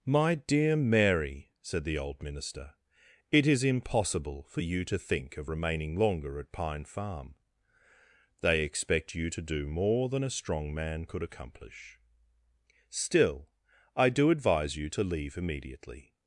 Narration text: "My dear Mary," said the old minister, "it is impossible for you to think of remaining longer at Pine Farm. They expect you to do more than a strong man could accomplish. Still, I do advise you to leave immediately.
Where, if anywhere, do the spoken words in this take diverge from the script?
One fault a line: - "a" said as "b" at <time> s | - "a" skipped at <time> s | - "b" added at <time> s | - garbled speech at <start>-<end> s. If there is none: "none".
none